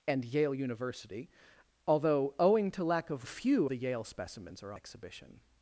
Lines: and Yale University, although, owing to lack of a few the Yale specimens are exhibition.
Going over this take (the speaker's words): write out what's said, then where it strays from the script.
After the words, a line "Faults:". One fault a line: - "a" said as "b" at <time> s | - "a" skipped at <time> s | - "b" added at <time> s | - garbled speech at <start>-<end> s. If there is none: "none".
and Yale University, although, owing to lack of a few the Yale specimens are exhibition.
Faults:
none